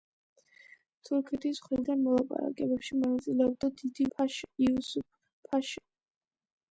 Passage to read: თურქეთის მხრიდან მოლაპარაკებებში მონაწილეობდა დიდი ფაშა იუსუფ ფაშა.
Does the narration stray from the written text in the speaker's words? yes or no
no